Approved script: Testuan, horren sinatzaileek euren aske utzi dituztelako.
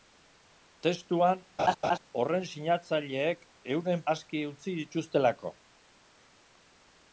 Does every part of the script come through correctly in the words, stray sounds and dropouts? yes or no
no